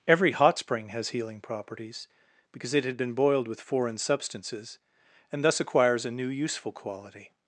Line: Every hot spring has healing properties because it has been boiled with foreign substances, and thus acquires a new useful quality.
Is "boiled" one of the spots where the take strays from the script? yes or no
no